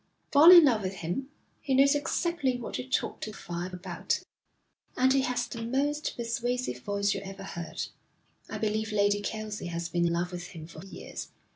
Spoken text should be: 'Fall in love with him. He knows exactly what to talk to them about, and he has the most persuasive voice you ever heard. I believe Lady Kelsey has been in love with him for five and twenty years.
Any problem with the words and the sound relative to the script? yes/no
yes